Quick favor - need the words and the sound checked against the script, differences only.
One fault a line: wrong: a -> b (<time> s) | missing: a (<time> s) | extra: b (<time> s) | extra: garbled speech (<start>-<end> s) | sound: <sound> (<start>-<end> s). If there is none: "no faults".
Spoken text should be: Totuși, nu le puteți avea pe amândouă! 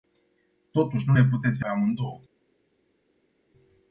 missing: avea (1.7 s)